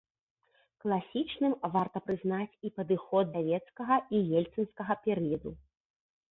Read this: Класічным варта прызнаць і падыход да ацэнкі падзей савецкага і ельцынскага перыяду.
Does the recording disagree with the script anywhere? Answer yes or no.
yes